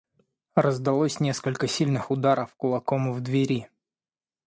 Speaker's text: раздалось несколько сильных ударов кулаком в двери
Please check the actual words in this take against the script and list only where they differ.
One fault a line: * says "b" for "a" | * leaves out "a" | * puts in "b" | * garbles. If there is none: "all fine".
all fine